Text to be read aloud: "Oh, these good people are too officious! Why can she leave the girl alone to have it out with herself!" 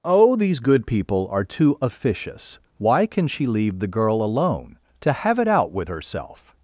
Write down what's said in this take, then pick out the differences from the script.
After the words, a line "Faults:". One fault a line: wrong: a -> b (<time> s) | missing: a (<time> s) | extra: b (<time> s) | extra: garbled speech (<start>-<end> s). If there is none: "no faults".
"Oh, these good people are too officious! Why can she leave the girl alone to have it out with herself!"
Faults:
no faults